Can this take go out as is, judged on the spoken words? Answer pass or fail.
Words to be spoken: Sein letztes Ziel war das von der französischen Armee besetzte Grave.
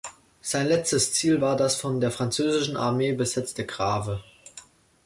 pass